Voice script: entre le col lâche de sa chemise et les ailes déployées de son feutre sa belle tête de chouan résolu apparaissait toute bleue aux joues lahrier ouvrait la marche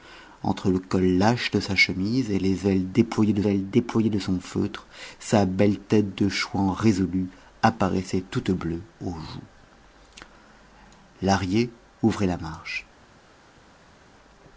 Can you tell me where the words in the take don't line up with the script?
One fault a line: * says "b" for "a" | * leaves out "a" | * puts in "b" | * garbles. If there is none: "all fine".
* puts in "ailes déployées de"